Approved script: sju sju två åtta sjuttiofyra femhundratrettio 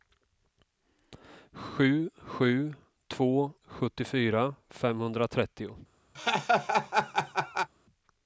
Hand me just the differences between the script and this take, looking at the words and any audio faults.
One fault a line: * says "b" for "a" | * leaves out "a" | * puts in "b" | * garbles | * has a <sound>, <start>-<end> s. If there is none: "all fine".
* leaves out "åtta"
* has a laugh, 6.1-7.7 s